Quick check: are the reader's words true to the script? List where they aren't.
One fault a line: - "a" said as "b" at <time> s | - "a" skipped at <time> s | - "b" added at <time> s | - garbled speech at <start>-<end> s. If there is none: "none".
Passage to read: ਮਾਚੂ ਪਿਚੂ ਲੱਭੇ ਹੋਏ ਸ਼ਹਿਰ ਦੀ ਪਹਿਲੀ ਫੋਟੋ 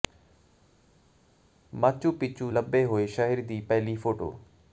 none